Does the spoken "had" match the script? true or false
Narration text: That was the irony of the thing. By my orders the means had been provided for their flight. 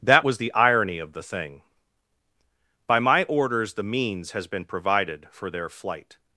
false